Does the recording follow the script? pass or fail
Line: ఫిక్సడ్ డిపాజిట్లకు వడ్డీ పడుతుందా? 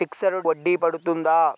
fail